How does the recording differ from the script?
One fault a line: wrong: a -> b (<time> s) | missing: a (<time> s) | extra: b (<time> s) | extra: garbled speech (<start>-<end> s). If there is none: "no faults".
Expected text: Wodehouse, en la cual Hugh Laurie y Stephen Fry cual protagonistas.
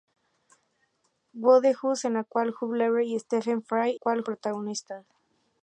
no faults